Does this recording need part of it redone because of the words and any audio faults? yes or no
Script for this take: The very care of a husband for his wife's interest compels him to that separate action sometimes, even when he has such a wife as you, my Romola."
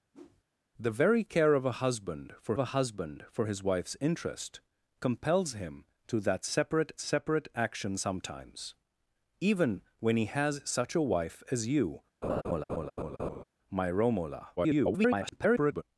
yes